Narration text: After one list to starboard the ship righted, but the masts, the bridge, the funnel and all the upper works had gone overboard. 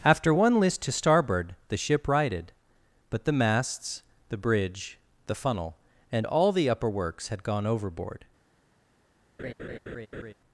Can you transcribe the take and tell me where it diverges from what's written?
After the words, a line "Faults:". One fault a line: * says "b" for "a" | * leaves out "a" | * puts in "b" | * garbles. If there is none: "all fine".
After one list to starboard the ship righted, but the masts, the bridge, the funnel and all the upper works had gone overboard.
Faults:
all fine